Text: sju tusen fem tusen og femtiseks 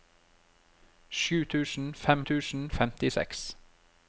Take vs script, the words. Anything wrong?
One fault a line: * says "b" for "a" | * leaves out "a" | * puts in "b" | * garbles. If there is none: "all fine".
all fine